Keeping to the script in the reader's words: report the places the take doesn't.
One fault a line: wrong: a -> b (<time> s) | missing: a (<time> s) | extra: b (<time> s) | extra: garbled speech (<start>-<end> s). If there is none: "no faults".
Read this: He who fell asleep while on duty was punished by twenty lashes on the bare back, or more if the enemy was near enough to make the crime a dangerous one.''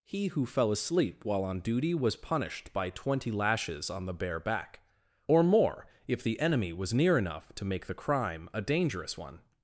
no faults